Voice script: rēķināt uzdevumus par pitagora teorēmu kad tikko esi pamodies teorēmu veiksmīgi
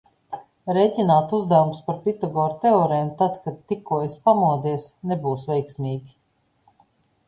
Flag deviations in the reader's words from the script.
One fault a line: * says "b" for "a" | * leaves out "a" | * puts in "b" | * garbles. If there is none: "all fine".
* puts in "tad"
* says "nebūs" for "teorēmu"